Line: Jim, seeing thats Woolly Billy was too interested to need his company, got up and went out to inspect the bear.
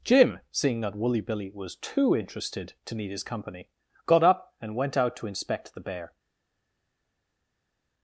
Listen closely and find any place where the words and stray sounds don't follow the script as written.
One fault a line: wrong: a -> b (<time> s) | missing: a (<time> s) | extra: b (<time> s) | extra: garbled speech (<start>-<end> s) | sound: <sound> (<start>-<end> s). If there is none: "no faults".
wrong: thats -> that (0.8 s)